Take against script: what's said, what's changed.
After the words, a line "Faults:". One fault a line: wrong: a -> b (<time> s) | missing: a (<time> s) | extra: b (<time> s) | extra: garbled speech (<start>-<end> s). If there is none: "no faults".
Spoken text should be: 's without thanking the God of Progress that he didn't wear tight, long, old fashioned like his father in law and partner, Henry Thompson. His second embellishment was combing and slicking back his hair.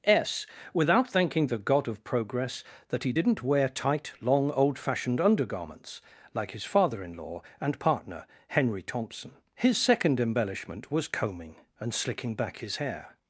's without thanking the God of Progress that he didn't wear tight, long, old fashioned undergarments, like his father in law and partner, Henry Thompson. His second embellishment was combing and slicking back his hair.
Faults:
extra: undergarments (5.2 s)